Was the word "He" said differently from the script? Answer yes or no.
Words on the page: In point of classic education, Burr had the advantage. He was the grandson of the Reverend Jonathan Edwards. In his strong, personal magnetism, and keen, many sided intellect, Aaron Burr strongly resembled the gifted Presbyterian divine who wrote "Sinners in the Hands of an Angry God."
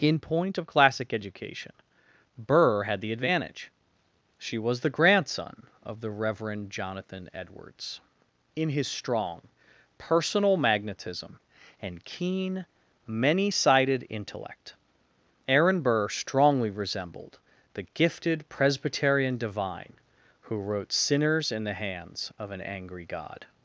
yes